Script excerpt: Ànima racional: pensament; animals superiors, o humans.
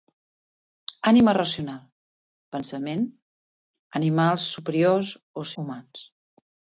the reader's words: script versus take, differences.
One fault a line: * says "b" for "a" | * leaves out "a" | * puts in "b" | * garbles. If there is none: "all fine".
all fine